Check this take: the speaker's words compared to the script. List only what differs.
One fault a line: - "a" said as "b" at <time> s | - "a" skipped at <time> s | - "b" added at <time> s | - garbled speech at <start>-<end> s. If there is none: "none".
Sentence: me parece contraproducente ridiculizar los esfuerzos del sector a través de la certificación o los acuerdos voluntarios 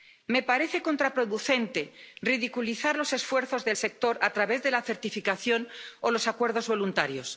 none